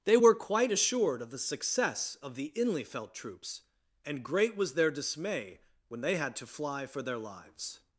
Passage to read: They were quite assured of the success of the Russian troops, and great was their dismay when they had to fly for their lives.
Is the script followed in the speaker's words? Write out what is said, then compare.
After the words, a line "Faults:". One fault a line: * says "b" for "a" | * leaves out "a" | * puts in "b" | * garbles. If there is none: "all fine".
They were quite assured of the success of the Inlyfelt troops, and great was their dismay when they had to fly for their lives.
Faults:
* says "Inlyfelt" for "Russian"